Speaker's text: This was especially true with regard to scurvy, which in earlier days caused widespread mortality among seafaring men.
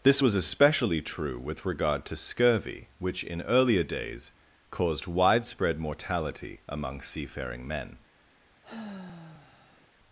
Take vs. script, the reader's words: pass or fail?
pass